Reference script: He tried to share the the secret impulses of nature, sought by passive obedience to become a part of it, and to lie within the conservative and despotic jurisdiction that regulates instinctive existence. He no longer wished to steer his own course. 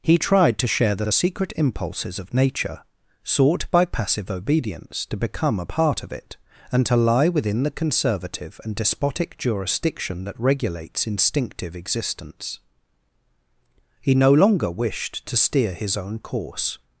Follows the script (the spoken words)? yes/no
yes